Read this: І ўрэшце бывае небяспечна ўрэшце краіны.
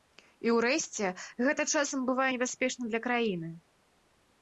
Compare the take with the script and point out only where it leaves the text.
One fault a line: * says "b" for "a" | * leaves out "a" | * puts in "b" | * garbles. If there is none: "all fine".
* puts in "гэта часам"
* says "для" for "ўрэшце"